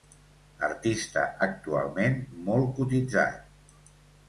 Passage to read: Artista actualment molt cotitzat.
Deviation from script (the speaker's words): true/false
false